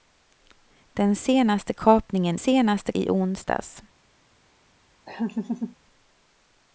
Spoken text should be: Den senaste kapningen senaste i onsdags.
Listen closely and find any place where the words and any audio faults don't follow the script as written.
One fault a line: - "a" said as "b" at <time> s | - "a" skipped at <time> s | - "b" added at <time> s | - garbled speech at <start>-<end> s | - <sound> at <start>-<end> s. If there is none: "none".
- laugh at 5.1-5.8 s